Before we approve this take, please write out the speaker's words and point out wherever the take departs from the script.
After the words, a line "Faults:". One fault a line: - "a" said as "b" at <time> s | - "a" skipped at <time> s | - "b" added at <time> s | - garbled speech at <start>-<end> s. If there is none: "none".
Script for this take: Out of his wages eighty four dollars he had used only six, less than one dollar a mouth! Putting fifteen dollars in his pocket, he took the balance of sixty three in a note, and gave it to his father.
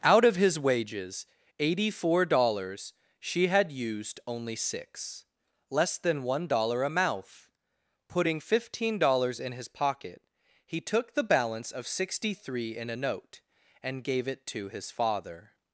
Out of his wages eighty four dollars she had used only six, less than one dollar a mouth! Putting fifteen dollars in his pocket, he took the balance of sixty three in a note, and gave it to his father.
Faults:
- "he" said as "she" at 3.2 s